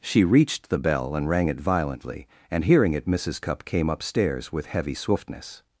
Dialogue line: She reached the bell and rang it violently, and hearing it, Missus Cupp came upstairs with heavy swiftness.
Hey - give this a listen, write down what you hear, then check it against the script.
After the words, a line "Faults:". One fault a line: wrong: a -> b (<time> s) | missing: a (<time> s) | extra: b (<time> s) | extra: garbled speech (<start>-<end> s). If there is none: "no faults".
She reached the bell and rang it violently, and hearing it, Missus Cupp came upstairs with heavy swiftness.
Faults:
no faults